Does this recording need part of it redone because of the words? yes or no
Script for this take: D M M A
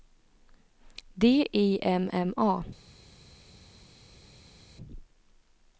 yes